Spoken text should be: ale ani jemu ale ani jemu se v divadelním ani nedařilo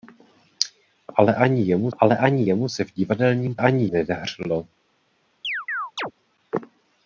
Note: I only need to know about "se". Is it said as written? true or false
true